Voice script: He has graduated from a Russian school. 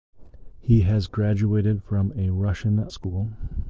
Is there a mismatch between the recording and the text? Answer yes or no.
no